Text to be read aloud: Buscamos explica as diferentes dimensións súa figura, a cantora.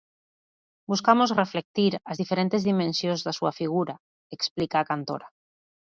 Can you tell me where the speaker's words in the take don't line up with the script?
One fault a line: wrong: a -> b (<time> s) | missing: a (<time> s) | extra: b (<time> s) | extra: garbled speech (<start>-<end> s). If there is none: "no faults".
wrong: explica -> reflectir (1.4 s)
extra: da (3.3 s)
extra: explica (4.4 s)